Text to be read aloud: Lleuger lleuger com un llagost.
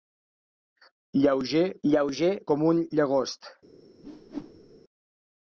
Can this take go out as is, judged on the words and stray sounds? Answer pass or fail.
fail